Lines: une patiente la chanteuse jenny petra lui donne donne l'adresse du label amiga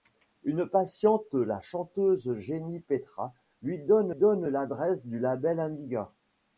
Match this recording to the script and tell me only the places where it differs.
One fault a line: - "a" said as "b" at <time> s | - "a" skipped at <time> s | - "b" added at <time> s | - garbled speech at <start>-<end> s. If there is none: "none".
none